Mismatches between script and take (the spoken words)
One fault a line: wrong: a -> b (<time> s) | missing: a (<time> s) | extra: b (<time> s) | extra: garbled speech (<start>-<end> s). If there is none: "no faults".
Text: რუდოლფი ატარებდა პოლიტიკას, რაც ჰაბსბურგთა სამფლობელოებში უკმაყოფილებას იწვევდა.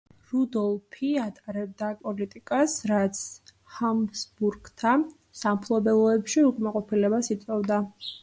no faults